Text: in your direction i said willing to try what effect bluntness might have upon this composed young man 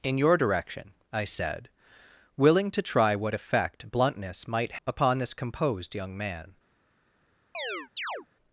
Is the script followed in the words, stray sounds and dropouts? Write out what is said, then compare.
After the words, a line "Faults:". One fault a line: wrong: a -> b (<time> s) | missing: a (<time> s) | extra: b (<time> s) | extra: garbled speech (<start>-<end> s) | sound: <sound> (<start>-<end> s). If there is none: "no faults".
in your direction i said willing to try what effect bluntness might upon this composed young man
Faults:
missing: have (4.8 s)
sound: chirp (7.5-8.3 s)